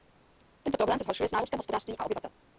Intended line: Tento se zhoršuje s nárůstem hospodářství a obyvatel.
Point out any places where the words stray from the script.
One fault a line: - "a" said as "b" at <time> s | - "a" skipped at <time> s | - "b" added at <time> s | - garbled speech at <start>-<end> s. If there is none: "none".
- "problém" added at 0.8 s